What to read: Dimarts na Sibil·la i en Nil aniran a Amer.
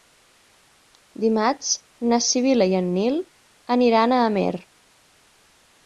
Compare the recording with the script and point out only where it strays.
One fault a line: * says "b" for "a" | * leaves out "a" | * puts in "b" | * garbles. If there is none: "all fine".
all fine